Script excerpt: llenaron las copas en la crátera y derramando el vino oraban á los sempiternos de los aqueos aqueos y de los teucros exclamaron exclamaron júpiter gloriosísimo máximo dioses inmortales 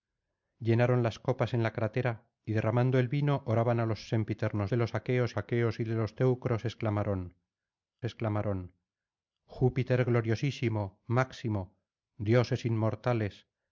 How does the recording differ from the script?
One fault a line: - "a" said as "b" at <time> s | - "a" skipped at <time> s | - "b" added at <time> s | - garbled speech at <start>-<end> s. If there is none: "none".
none